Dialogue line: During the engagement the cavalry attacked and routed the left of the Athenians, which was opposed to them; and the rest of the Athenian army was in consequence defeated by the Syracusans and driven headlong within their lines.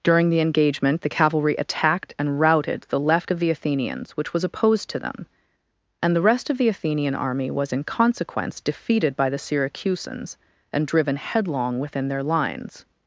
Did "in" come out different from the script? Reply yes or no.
no